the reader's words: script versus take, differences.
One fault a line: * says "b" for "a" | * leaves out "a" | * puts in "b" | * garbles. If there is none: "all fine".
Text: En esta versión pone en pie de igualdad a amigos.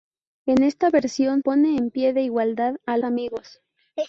all fine